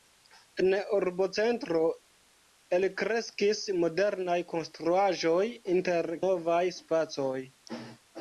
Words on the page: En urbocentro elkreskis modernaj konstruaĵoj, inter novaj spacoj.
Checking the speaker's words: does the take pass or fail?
pass